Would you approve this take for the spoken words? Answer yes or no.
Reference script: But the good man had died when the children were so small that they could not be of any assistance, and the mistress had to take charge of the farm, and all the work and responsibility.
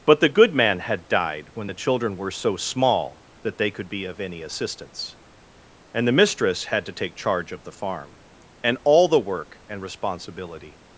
no